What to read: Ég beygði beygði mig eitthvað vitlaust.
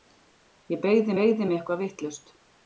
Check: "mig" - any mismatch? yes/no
no